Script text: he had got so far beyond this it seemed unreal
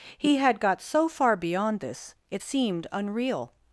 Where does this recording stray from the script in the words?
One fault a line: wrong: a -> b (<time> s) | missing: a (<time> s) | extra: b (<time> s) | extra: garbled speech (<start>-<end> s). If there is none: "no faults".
no faults